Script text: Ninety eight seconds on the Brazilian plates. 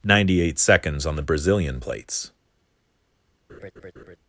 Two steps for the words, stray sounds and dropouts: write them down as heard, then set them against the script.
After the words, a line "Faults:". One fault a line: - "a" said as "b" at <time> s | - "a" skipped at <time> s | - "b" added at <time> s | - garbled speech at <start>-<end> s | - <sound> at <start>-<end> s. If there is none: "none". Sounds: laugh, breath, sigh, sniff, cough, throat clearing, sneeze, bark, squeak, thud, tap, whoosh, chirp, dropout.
Ninety eight seconds on the Brazilian plates.
Faults:
- laugh at 3.5-4.2 s